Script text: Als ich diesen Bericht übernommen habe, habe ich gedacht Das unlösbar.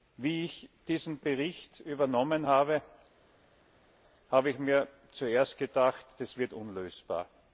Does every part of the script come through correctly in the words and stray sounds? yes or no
no